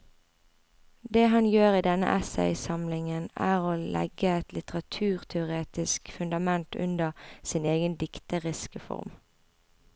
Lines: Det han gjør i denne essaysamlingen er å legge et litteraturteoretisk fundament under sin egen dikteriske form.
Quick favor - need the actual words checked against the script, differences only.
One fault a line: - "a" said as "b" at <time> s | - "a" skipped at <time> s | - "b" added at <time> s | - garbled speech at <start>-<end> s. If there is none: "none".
none